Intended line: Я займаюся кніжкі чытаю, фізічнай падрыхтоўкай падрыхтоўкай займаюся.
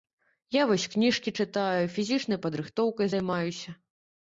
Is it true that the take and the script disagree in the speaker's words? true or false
true